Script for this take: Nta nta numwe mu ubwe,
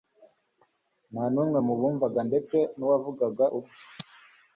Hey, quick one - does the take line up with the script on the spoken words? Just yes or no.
no